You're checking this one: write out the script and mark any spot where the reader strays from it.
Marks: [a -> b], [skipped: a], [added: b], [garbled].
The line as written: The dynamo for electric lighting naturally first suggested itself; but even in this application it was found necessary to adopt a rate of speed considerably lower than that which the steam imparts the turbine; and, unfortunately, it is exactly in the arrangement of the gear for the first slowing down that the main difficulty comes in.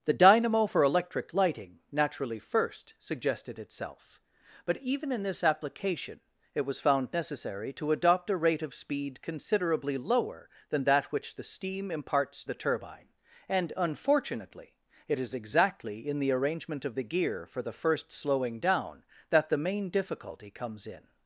The dynamo for electric lighting naturally first suggested itself; but even in this application it was found necessary to adopt a rate of speed considerably lower than that which the steam imparts the turbine; and, unfortunately, it is exactly in the arrangement of the gear for the first slowing down that the main difficulty comes in.